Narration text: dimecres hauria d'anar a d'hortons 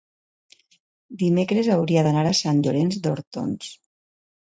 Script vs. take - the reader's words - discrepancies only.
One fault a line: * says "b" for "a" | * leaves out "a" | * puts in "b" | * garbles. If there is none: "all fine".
* puts in "sant llorenç"